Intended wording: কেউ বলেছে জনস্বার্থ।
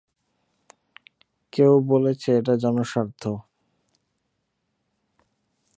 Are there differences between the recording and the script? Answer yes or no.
yes